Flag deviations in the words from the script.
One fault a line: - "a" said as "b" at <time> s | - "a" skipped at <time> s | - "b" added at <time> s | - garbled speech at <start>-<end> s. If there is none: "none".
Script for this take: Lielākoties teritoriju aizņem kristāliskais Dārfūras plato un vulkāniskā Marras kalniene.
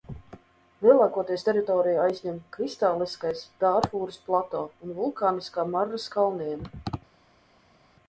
none